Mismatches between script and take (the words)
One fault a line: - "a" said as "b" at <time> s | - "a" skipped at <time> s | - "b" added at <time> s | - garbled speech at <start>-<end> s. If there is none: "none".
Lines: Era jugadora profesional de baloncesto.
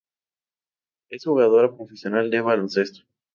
- "Era" said as "Es" at 1.1 s